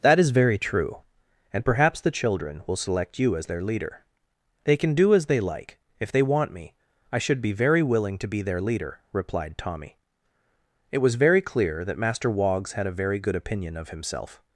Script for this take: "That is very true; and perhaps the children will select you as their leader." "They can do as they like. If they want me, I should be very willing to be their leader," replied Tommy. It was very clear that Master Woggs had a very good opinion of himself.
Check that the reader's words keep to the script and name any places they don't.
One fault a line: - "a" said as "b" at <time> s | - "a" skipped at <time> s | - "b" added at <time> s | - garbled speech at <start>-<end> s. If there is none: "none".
none